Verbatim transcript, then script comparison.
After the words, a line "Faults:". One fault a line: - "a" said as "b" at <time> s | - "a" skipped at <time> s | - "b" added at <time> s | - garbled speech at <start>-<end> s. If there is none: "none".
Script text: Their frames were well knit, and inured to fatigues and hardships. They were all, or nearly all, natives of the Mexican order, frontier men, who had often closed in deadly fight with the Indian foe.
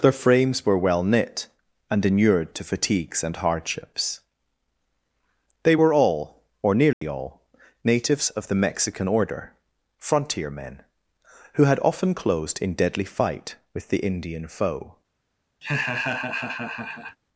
Their frames were well knit, and inured to fatigues and hardships. They were all, or nearly all, natives of the Mexican order, frontier men, who had often closed in deadly fight with the Indian foe.
Faults:
none